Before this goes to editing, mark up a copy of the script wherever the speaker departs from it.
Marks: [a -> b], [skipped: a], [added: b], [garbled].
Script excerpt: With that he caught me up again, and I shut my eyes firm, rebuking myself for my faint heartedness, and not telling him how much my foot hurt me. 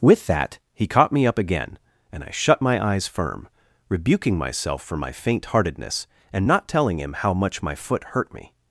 With that he caught me up again, and I shut my eyes firm, rebuking myself for my faint heartedness, and not telling him how much my foot hurt me.